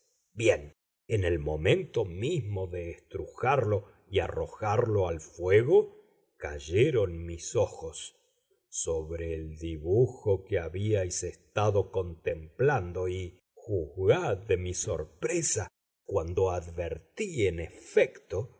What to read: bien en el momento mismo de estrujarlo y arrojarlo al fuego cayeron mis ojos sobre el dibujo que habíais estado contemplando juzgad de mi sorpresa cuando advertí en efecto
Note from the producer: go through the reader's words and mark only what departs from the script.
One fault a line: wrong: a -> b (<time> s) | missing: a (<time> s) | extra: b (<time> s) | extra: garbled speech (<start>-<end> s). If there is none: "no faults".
extra: y (13.1 s)